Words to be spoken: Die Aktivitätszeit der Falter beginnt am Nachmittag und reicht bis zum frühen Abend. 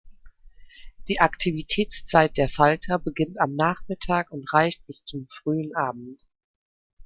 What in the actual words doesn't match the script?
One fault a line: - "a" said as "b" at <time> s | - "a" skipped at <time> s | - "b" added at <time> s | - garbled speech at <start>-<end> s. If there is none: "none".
none